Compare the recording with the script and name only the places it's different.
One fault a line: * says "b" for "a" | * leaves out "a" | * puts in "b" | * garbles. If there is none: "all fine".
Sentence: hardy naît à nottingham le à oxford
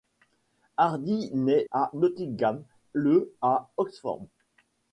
all fine